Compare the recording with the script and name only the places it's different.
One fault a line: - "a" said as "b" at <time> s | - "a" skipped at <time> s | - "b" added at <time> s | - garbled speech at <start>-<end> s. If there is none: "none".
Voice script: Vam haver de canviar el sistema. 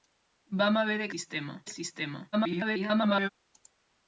- "canviar" said as "sistema" at 1.1 s
- garbled speech at 2.3-3.3 s